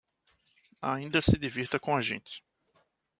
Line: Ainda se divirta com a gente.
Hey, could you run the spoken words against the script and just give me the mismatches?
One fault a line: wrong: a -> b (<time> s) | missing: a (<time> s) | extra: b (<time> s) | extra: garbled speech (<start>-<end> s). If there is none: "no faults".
no faults